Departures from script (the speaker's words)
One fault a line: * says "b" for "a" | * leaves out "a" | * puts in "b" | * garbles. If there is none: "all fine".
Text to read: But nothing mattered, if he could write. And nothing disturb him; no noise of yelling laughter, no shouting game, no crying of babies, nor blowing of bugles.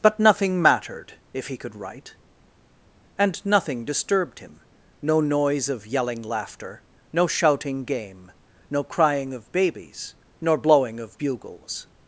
* says "disturbed" for "disturb"